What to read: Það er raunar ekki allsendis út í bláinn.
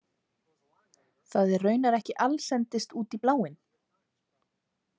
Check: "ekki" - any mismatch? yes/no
no